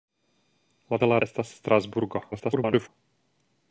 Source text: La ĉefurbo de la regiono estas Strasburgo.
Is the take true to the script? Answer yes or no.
no